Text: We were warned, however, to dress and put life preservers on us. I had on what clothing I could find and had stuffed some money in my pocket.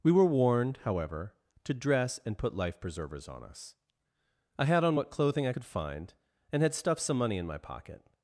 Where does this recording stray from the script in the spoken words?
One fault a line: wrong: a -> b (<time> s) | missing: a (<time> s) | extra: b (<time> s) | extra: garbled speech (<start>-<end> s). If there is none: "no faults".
no faults